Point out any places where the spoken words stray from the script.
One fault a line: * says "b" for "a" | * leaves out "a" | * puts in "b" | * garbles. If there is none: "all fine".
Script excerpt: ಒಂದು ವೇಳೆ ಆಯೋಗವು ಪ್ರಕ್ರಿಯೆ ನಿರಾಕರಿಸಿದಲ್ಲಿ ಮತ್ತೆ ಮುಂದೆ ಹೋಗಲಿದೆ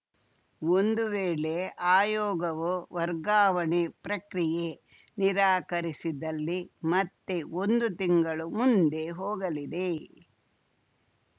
* puts in "ವರ್ಗಾವಣೆ"
* puts in "ಒಂದು ತಿಂಗಳು"